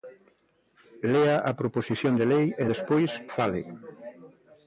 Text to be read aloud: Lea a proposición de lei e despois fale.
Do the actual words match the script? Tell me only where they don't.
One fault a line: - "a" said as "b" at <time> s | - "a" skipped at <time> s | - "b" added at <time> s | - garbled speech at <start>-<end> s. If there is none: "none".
none